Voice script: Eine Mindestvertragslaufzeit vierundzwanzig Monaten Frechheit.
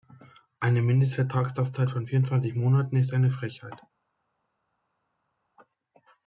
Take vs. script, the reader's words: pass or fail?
fail